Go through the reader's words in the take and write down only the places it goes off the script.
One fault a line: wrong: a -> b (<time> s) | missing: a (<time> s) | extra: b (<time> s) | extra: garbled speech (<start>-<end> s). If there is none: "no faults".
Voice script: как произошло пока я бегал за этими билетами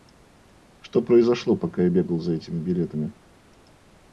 wrong: как -> что (0.8 s)